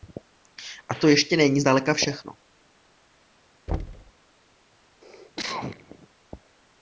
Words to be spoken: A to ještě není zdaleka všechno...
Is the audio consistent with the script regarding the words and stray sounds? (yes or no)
no